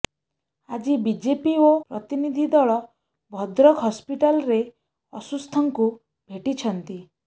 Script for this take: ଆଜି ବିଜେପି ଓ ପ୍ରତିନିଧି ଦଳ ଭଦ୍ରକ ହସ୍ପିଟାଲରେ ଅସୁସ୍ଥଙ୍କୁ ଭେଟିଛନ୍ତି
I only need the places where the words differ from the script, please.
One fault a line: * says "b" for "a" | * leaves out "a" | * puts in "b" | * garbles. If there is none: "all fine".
all fine